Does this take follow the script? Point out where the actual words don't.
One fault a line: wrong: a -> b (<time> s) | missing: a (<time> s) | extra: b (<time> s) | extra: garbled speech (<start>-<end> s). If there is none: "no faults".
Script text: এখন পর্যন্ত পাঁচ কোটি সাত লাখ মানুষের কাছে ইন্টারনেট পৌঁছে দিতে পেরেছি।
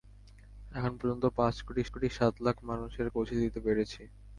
extra: কোটি (1.9 s)
missing: কাছে ইন্টারনেট (3.1 s)